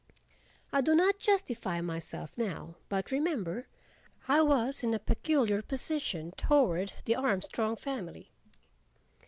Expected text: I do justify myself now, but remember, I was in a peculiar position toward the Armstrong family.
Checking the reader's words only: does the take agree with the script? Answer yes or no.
no